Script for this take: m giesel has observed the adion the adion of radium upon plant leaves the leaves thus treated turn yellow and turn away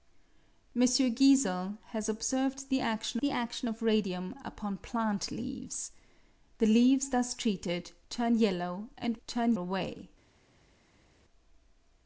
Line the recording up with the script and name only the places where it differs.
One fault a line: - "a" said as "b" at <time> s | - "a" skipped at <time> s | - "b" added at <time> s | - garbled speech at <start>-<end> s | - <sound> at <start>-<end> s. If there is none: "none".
none